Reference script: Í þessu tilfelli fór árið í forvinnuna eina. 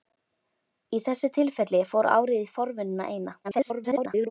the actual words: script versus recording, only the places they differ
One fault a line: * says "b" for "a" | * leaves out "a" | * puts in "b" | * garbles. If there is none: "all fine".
* garbles